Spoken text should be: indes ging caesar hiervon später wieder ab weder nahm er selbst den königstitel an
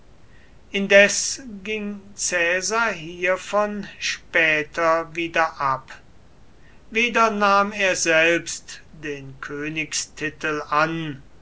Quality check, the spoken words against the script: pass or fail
pass